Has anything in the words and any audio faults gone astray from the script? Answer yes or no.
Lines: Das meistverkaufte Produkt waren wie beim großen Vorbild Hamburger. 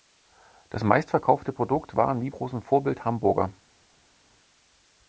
yes